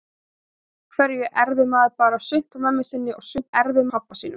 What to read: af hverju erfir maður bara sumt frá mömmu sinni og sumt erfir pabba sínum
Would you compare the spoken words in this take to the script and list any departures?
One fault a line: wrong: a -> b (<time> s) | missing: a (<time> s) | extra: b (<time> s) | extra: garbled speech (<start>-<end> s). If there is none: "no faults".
no faults